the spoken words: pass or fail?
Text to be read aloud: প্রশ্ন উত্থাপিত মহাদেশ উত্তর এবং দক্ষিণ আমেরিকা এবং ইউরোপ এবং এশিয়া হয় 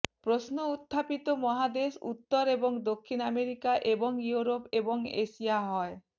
pass